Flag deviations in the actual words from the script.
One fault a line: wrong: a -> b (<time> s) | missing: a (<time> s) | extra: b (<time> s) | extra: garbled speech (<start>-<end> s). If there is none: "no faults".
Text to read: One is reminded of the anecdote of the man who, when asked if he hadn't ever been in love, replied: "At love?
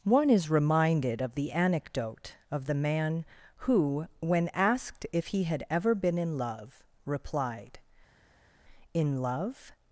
wrong: hadn't -> had (5.4 s)
wrong: At -> In (8.9 s)